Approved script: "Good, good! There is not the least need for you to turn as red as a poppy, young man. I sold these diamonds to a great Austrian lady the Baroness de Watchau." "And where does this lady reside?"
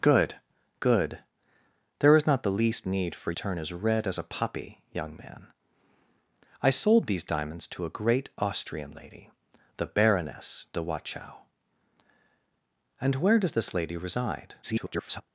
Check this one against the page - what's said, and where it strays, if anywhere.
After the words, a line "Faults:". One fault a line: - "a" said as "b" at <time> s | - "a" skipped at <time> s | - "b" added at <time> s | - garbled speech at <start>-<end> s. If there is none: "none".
"Good, good! There is not the least need for turn as red as a poppy, young man. I sold these diamonds to a great Austrian lady the Baroness de Watchau." "And where does this lady reside?" [garbled]
Faults:
- "you to" skipped at 3.3 s
- garbled speech at 14.6-15.2 s